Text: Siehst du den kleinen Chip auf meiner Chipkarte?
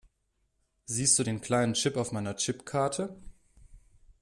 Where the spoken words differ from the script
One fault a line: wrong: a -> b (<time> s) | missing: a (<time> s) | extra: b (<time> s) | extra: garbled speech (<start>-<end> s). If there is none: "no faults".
no faults